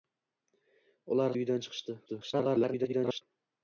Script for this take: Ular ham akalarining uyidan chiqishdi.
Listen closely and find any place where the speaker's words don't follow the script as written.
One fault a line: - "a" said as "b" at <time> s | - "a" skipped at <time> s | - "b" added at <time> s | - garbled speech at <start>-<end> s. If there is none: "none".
- "ham akalarining" skipped at 1.4 s
- garbled speech at 2.1-3.2 s